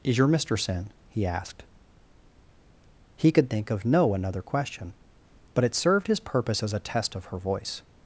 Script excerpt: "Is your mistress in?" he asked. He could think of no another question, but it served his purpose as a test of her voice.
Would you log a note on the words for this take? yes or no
no